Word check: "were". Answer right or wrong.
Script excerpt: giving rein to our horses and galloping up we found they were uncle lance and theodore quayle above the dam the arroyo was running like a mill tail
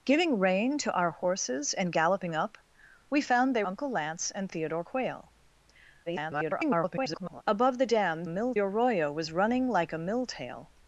wrong